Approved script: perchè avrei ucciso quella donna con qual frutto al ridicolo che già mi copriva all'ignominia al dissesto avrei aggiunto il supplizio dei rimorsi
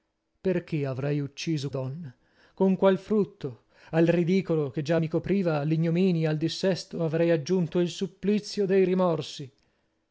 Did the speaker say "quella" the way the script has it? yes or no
no